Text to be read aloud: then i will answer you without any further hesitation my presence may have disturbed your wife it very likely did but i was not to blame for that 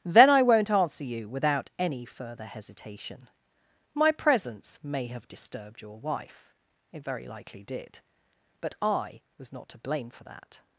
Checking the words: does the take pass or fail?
fail